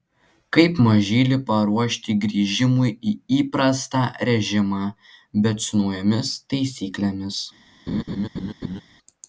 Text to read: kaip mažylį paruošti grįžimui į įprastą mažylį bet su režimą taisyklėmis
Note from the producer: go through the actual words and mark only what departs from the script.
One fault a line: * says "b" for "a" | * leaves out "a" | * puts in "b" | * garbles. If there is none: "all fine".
* says "režimą" for "mažylį"
* says "naujomis" for "režimą"